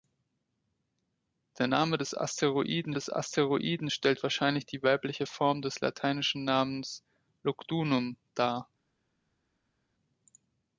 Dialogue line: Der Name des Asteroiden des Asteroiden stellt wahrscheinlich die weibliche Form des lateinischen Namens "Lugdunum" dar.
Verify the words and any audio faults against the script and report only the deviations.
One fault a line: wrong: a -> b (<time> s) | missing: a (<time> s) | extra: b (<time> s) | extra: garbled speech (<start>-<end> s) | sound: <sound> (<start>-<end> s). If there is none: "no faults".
no faults